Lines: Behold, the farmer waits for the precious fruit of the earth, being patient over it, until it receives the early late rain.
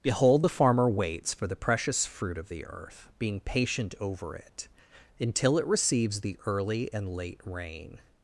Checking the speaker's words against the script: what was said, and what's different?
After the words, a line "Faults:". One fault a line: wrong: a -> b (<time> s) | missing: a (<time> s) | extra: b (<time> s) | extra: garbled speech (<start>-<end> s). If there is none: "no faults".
Behold, the farmer waits for the precious fruit of the earth, being patient over it, until it receives the early and late rain.
Faults:
extra: and (6.9 s)